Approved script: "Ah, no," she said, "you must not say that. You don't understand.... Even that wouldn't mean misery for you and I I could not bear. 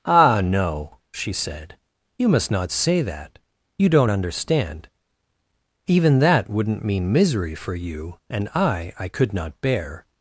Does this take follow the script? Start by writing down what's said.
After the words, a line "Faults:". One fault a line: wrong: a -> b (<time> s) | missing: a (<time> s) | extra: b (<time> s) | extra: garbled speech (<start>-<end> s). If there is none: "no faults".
"Ah, no," she said, "you must not say that. You don't understand.... Even that wouldn't mean misery for you and I I could not bear.
Faults:
no faults